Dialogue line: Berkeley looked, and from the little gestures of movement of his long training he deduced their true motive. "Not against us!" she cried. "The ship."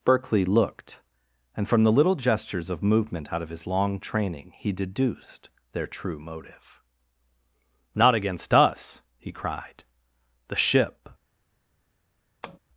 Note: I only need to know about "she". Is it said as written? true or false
false